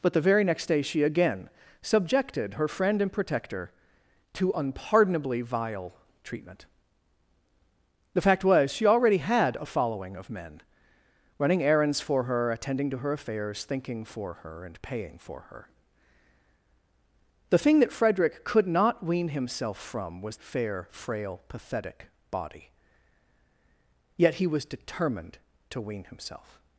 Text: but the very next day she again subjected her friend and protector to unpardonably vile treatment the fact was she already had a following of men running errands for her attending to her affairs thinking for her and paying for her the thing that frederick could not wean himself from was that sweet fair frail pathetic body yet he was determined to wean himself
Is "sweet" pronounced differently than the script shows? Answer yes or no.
yes